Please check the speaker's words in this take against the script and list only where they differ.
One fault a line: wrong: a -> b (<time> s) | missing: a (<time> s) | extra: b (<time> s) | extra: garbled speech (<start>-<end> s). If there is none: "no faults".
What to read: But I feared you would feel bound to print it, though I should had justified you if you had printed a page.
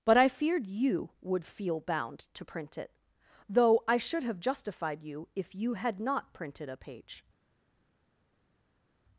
wrong: had -> have (4.2 s)
extra: not (6.0 s)